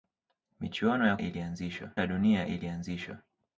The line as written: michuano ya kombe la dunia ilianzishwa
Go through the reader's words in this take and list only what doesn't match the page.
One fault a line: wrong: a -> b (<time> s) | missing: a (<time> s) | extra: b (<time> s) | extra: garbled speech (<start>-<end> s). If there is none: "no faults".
wrong: kombe -> ilianzishwa (1.2 s)